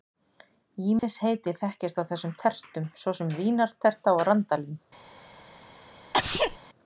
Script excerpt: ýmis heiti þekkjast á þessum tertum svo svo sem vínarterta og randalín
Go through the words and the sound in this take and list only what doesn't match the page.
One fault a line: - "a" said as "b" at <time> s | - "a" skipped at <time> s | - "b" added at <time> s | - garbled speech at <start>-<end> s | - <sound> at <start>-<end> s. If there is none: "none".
- dropout at 1.0-1.0 s
- "svo" skipped at 3.2 s
- sneeze at 6.1-6.6 s